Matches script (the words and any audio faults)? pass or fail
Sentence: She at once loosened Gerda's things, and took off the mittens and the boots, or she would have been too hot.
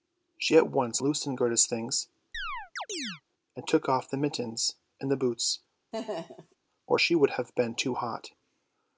fail